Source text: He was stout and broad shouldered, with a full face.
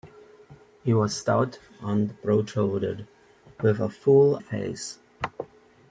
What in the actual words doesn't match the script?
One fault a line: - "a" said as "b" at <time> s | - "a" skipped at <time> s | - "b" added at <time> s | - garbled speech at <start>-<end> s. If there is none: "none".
none